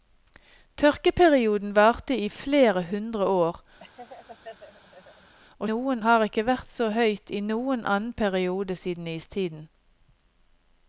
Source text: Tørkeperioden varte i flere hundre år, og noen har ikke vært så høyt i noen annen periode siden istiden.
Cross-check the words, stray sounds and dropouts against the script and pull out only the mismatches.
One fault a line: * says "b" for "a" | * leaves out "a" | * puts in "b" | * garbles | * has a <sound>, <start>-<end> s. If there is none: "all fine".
* has a laugh, 3.8-5.3 s